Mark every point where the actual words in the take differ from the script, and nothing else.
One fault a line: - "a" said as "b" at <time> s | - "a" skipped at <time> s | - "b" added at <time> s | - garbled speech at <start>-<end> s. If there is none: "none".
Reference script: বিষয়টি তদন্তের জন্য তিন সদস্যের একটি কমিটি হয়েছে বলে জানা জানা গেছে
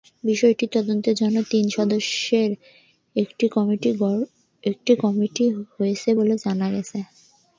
- "জানা" skipped at 6.7 s